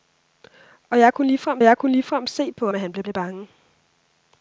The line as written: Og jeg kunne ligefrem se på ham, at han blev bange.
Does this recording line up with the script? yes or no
no